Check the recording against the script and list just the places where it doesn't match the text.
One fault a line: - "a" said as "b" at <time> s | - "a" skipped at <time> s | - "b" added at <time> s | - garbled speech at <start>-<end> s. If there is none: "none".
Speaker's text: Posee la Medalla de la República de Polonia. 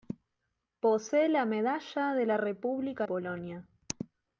- "de" skipped at 3.0 s